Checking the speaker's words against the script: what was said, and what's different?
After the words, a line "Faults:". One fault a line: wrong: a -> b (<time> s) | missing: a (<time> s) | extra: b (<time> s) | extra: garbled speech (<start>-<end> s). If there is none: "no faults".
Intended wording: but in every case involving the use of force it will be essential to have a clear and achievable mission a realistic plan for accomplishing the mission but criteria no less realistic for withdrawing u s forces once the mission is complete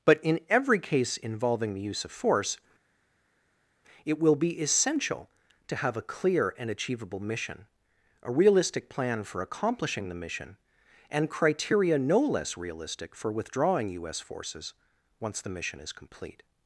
but in every case involving the use of force it will be essential to have a clear and achievable mission a realistic plan for accomplishing the mission and criteria no less realistic for withdrawing u s forces once the mission is complete
Faults:
wrong: but -> and (11.1 s)